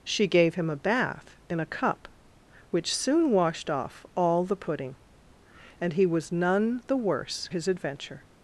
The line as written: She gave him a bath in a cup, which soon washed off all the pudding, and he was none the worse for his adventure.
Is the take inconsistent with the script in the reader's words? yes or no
yes